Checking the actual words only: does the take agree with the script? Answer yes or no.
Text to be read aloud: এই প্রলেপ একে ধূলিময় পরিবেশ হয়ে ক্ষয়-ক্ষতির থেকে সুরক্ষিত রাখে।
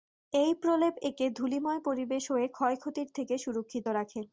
yes